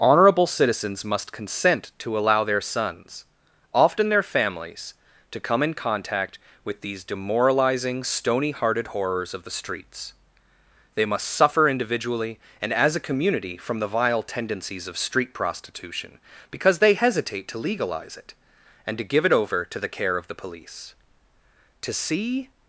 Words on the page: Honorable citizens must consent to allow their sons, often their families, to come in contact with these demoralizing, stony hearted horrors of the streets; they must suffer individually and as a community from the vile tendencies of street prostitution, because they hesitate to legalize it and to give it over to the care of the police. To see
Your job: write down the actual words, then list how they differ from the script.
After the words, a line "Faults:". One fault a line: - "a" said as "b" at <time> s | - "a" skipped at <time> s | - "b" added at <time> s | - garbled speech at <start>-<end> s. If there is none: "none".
Honorable citizens must consent to allow their sons, often their families, to come in contact with these demoralizing, stony hearted horrors of the streets; they must suffer individually and as a community from the vile tendencies of street prostitution, because they hesitate to legalize it and to give it over to the care of the police. To see
Faults:
none